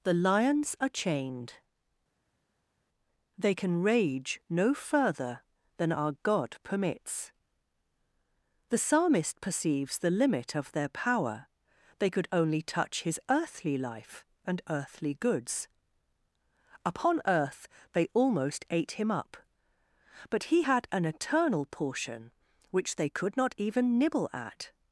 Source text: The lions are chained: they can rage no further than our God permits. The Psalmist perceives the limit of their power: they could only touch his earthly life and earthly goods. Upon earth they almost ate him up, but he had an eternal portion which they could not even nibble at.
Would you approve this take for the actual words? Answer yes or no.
yes